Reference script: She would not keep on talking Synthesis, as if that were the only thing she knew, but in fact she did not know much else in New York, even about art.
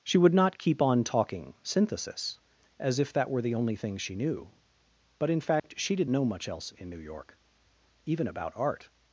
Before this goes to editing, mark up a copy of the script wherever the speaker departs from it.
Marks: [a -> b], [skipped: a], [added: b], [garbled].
She would not keep on talking Synthesis, as if that were the only thing she knew, but in fact she did [skipped: not] know much else in New York, even about art.